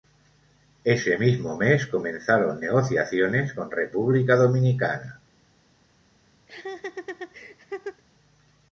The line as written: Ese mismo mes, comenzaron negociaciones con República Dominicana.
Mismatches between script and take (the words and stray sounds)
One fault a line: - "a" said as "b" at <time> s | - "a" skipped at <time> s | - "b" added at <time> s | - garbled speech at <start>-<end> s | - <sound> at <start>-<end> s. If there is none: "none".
- laugh at 6.5-8.0 s